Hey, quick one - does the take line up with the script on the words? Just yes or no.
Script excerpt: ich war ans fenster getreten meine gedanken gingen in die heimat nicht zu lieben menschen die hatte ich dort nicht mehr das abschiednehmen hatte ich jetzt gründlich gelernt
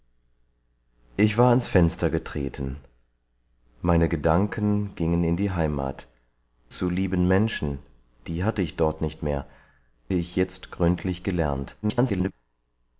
no